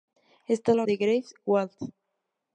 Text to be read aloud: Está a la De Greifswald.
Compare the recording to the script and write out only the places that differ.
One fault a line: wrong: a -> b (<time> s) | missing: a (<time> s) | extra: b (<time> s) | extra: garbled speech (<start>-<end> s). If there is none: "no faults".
no faults